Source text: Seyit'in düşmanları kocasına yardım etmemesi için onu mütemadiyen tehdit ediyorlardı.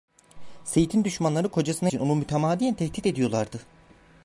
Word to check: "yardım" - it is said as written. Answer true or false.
false